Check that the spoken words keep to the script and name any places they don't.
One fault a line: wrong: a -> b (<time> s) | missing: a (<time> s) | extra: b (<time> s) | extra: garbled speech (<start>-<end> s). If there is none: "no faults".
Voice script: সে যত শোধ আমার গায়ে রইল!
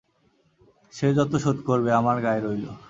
extra: করবে (1.7 s)